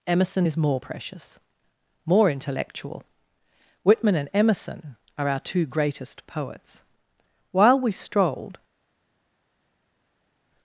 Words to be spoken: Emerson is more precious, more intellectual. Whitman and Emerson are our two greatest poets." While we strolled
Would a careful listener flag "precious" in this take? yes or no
no